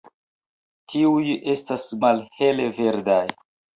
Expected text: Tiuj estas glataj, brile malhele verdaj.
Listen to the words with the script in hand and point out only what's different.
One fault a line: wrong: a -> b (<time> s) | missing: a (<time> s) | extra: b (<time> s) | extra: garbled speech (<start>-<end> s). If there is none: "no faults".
missing: glataj brile (1.9 s)